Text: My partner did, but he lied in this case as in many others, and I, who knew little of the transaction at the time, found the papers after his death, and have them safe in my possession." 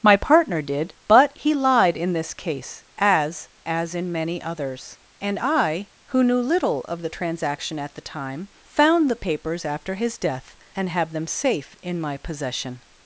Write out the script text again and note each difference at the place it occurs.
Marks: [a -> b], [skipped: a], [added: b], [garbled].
My partner did, but he lied in this case as [added: as] in many others, and I, who knew little of the transaction at the time, found the papers after his death, and have them safe in my possession."